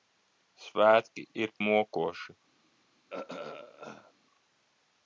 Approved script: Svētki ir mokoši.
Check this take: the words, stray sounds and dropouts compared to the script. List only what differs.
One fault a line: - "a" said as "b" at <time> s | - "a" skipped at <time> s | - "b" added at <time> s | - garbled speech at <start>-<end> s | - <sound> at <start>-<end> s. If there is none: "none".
- throat clearing at 3.1-4.1 s